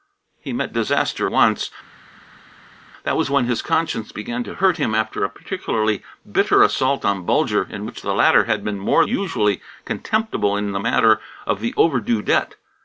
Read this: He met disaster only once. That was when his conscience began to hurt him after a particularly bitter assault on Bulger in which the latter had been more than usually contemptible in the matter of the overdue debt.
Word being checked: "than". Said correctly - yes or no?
no